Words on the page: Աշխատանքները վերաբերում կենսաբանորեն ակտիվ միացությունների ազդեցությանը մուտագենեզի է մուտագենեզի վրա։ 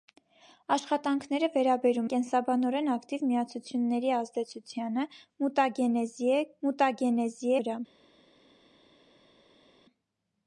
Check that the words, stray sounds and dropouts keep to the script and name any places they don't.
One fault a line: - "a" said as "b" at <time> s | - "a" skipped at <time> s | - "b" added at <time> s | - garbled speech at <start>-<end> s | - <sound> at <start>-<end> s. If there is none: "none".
none